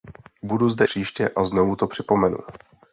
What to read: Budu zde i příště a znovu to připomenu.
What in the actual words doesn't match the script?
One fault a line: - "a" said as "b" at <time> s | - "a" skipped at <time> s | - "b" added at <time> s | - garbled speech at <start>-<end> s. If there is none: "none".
- "i" skipped at 0.8 s